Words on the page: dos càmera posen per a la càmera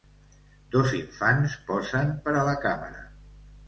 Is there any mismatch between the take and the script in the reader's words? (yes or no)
yes